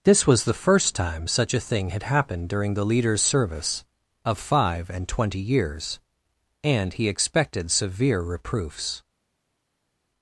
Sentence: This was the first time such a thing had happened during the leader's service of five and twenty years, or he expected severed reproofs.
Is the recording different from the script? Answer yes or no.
yes